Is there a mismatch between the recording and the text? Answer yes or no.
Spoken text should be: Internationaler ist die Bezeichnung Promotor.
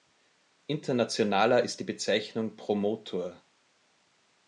no